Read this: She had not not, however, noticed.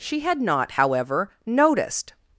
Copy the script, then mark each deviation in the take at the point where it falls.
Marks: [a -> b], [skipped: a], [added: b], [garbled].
She had not [skipped: not,] however, noticed.